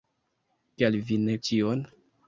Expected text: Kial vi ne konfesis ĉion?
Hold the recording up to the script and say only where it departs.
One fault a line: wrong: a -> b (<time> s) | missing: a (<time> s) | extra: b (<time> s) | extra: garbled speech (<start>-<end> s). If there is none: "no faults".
missing: konfesis (1.4 s)